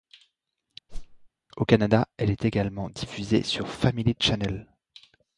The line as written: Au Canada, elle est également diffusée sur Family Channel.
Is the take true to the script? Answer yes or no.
yes